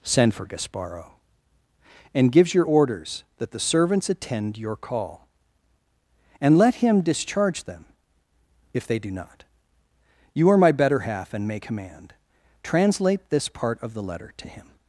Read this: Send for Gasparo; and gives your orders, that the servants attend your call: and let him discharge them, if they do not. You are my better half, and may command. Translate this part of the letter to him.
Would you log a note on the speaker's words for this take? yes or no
no